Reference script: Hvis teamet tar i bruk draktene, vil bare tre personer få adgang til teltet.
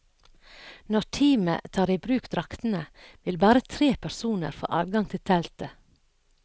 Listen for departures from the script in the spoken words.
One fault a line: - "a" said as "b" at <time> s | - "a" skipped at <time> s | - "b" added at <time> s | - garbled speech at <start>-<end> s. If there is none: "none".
- "Hvis" said as "Når" at 0.9 s